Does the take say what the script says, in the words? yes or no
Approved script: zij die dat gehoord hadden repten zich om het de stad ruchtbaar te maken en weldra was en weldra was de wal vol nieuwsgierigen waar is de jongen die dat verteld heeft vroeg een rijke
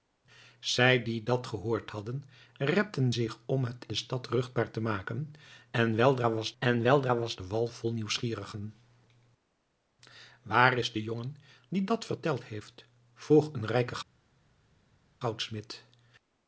yes